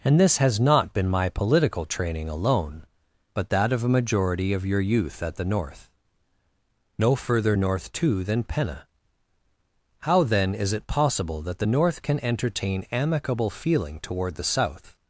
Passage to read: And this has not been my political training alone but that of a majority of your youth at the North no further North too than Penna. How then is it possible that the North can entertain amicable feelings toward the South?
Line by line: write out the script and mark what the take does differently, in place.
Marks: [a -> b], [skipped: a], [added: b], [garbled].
And this has not been my political training alone but that of a majority of your youth at the North no further North too than Penna. How then is it possible that the North can entertain amicable [feelings -> feeling] toward the South?